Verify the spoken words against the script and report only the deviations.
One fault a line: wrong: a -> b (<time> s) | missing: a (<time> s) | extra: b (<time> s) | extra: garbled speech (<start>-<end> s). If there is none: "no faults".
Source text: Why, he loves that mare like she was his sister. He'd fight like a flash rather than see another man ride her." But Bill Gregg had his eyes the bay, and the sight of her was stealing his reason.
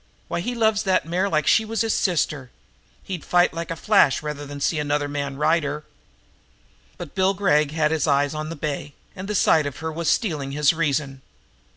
extra: on (8.3 s)